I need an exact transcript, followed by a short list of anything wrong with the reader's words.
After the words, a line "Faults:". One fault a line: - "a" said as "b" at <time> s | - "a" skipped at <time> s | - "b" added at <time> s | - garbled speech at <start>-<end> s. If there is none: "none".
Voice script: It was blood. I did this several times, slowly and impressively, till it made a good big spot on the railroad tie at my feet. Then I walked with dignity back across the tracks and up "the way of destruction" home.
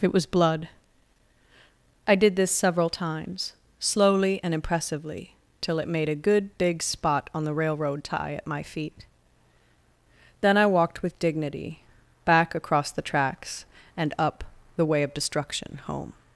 It was blood. I did this several times, slowly and impressively, till it made a good big spot on the railroad tie at my feet. Then I walked with dignity back across the tracks and up "the way of destruction" home.
Faults:
none